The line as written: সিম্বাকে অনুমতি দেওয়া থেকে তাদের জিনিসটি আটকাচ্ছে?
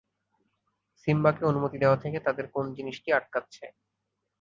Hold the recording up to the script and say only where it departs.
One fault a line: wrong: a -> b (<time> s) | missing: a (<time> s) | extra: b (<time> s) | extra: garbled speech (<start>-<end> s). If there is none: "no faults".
extra: কোন (2.5 s)